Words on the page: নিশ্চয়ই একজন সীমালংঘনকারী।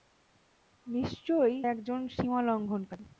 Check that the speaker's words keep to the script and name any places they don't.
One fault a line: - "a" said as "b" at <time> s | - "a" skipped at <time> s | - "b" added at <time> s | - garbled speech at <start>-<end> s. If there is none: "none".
none